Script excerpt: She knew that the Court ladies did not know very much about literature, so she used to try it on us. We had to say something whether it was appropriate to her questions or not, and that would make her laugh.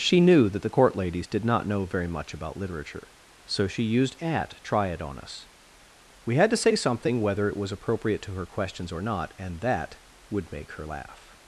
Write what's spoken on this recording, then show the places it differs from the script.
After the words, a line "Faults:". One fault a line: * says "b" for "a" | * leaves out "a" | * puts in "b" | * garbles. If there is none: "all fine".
She knew that the Court ladies did not know very much about literature, so she used at try it on us. We had to say something whether it was appropriate to her questions or not, and that would make her laugh.
Faults:
* says "at" for "to"